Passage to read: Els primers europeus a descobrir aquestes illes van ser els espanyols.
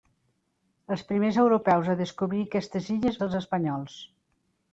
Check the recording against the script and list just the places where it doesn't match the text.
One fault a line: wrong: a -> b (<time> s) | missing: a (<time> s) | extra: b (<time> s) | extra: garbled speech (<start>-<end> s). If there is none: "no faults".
missing: van (3.2 s)